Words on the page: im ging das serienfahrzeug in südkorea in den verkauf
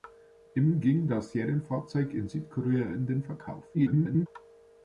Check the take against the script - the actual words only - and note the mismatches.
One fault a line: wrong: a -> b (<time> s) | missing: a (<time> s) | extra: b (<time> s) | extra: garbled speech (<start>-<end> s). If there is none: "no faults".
extra: garbled speech (3.7-4.3 s)